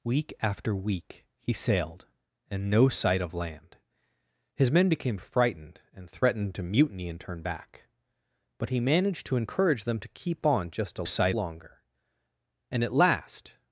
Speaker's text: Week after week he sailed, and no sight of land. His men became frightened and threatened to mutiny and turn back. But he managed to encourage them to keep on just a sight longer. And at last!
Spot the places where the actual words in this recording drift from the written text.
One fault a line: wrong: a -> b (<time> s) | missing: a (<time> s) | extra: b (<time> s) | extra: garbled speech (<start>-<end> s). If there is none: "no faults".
no faults